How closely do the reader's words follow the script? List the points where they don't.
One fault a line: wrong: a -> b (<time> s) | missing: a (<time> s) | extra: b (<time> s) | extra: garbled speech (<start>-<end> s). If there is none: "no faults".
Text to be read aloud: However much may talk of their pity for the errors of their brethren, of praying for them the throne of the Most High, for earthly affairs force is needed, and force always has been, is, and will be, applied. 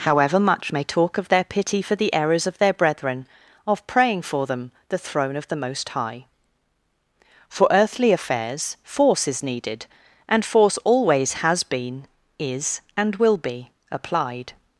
no faults